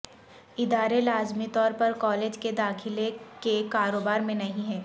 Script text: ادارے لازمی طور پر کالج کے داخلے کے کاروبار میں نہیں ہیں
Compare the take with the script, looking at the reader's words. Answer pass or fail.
pass